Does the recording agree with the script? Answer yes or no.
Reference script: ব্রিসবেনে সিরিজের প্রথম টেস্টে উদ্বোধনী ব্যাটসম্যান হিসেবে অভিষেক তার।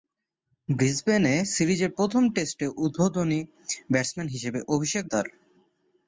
yes